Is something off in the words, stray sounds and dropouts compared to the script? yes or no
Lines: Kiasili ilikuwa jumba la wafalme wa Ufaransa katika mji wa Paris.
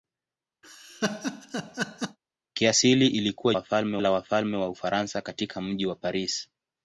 yes